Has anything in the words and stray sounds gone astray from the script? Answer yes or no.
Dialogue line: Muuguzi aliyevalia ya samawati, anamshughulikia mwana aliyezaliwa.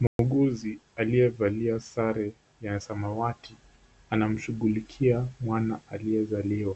yes